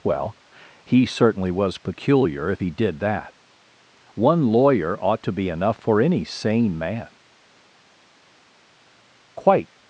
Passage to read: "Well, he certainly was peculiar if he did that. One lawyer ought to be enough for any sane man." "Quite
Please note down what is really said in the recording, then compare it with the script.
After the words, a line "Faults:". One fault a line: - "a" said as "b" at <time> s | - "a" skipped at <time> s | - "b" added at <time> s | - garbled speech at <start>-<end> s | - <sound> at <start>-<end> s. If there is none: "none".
"Well, he certainly was peculiar if he did that. One lawyer ought to be enough for any sane man." "Quite
Faults:
none